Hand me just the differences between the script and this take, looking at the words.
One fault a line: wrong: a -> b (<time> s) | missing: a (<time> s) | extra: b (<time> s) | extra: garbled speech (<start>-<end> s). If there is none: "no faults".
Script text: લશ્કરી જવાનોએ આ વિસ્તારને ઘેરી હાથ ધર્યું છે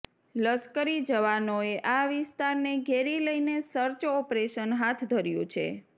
extra: લઈને સર્ચ ઓપરેશન (3.2 s)